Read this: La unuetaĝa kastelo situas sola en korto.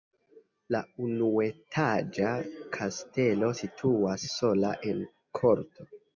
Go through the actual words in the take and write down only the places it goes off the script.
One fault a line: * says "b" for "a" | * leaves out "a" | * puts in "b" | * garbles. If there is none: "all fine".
all fine